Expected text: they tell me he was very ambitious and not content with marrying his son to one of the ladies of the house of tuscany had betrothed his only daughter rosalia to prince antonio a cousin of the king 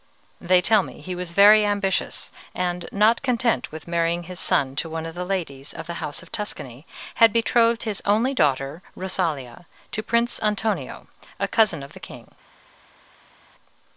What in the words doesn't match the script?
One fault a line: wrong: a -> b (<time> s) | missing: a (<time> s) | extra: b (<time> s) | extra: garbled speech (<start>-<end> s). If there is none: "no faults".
no faults